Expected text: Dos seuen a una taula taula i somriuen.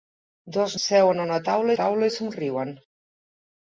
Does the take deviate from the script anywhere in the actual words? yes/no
no